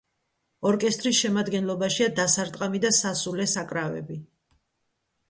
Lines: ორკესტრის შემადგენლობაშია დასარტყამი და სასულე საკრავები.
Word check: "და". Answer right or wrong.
right